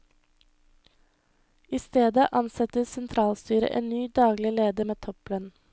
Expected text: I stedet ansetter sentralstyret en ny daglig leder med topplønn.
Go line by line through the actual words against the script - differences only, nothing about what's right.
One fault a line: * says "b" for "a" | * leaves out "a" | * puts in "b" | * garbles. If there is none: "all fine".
all fine